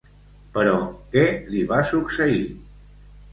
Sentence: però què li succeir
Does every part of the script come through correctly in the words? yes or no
no